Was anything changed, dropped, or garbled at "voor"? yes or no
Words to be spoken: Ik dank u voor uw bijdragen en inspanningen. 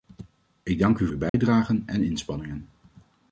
yes